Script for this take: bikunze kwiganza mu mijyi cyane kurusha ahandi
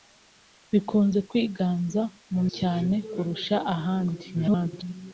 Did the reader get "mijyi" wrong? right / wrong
wrong